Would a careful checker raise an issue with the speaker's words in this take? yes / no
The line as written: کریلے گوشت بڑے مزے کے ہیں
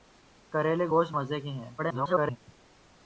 yes